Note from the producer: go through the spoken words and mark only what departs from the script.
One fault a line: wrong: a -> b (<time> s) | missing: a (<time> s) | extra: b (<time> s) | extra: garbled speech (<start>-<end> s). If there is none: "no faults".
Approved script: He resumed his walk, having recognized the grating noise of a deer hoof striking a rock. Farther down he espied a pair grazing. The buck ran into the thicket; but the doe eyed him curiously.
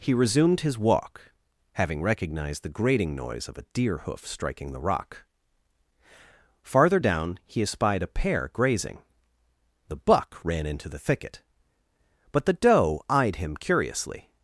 wrong: a -> the (4.7 s)